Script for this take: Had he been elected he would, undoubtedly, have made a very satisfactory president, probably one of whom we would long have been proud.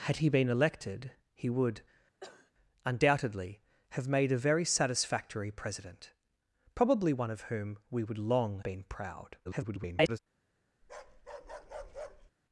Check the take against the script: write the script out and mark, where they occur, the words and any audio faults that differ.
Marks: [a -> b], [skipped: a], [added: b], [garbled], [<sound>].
Had he been elected he would, [cough] undoubtedly, have made a very satisfactory president, probably one of whom we would long [skipped: have] been proud. [garbled] [bark]